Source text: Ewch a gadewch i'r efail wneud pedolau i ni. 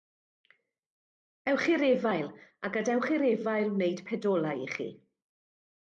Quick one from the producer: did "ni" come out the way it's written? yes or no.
no